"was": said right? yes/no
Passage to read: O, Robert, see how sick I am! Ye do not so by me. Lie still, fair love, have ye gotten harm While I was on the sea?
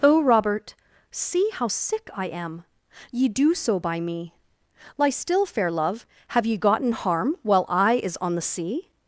no